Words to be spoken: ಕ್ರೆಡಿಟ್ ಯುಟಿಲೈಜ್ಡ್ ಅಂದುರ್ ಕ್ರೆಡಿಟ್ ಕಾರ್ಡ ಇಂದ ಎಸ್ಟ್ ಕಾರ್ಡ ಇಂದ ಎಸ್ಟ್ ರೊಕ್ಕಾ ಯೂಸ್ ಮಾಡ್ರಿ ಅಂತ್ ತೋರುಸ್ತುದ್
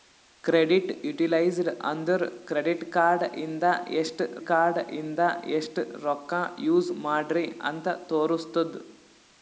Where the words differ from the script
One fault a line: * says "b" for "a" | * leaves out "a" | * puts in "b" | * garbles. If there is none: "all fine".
all fine